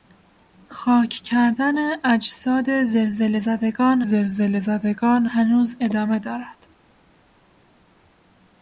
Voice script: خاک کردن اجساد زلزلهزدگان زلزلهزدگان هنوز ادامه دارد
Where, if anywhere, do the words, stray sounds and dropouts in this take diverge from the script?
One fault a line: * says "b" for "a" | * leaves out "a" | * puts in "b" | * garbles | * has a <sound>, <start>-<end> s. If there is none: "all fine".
all fine